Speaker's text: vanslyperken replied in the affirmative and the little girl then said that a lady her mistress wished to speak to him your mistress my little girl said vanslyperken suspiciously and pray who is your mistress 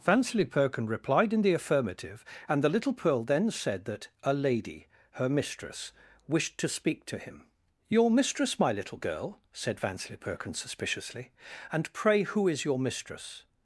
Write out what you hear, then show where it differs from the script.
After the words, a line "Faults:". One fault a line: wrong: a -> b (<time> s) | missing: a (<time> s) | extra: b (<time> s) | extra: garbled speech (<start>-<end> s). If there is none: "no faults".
vanslyperken replied in the affirmative and the little pearl then said that a lady her mistress wished to speak to him your mistress my little girl said vanslyperken suspiciously and pray who is your mistress
Faults:
wrong: girl -> pearl (2.9 s)